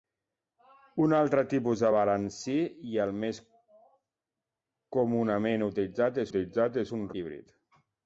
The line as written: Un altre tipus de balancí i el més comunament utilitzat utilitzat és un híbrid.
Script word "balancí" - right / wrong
right